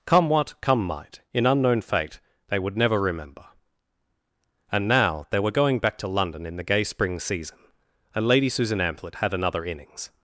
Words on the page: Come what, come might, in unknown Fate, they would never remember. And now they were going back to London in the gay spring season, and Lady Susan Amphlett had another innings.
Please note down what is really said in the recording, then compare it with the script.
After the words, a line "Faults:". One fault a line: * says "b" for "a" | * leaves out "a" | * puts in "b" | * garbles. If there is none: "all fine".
Come what, come might, in unknown Fate, they would never remember. And now they were going back to London in the gay spring season, and Lady Susan Amphlett had another innings.
Faults:
all fine